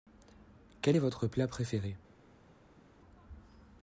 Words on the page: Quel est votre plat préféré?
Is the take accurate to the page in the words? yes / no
yes